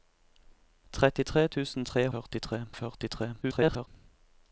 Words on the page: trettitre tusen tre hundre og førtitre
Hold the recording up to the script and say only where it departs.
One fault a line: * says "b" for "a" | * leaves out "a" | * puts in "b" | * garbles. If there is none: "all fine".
* says "førtitre" for "hundre"
* garbles